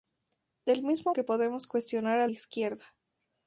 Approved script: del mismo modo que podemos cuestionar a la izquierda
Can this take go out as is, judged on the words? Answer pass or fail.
fail